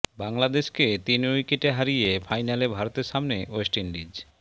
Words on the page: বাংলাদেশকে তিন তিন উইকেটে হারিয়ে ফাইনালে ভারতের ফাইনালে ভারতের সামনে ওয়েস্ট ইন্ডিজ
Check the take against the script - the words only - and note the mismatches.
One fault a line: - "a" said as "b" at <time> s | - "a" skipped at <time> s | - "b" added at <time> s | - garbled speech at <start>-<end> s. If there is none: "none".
- "তিন" skipped at 1.2 s
- "ফাইনালে ভারতের" skipped at 3.1 s